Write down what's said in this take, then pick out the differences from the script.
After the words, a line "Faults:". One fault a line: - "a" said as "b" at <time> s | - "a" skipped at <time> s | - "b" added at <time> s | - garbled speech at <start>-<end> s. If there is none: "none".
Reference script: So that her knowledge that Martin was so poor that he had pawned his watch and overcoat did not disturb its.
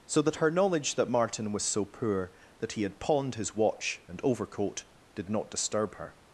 So that her knowledge that Martin was so poor that he had pawned his watch and overcoat did not disturb her.
Faults:
- "its" said as "her" at 6.0 s